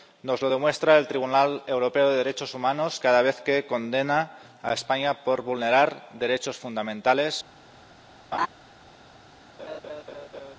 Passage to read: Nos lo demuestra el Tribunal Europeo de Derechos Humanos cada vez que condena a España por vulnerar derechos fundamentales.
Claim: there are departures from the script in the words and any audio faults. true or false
true